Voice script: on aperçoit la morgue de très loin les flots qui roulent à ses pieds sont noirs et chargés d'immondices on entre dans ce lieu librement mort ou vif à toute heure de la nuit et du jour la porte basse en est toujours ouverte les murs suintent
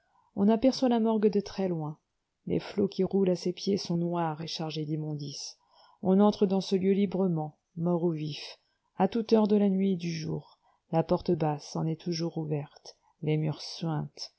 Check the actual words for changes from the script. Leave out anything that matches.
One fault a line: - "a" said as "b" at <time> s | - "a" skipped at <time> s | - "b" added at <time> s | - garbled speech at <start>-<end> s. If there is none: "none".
none